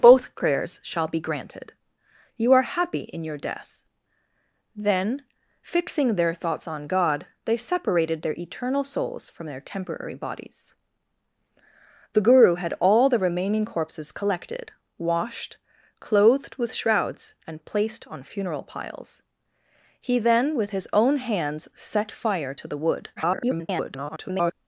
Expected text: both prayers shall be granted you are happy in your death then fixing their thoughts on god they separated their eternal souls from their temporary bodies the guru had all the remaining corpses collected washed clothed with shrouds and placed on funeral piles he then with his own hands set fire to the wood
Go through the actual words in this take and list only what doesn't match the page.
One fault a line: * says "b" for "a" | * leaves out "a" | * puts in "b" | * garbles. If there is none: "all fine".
* garbles